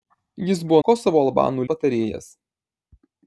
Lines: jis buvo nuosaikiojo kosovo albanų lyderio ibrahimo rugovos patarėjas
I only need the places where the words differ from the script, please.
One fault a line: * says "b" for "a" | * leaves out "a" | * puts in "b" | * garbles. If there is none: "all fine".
* leaves out "nuosaikiojo"
* leaves out "lyderio ibrahimo rugovos"